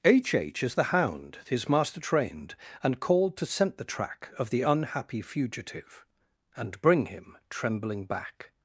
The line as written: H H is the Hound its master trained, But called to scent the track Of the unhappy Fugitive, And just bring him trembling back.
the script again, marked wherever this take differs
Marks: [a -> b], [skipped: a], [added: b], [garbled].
H H is the Hound [its -> his] master trained, [But -> And] called to scent the track Of the unhappy Fugitive, And [skipped: just] bring him trembling back.